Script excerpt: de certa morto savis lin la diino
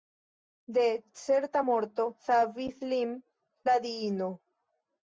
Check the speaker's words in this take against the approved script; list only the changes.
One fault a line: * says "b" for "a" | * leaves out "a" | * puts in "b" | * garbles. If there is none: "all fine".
all fine